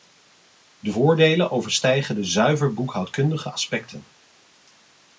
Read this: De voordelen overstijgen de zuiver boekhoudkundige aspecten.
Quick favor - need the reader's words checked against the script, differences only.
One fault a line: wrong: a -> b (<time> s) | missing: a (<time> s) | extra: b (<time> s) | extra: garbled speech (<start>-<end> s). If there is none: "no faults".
no faults